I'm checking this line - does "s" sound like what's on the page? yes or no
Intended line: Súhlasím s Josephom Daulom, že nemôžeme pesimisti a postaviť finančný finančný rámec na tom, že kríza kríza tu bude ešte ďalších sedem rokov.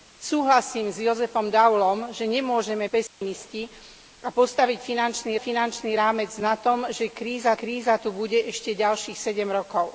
yes